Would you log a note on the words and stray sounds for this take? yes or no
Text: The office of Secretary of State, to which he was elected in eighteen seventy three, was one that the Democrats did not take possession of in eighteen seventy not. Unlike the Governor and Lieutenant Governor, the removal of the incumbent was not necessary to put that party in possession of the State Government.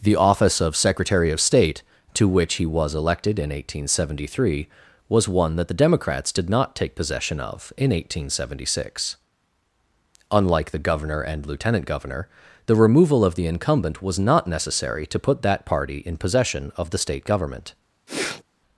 yes